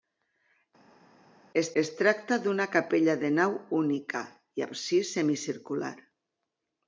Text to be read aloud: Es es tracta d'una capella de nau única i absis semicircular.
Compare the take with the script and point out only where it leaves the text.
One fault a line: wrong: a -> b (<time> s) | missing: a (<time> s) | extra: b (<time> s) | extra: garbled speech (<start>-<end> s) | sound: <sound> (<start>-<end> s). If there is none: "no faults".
no faults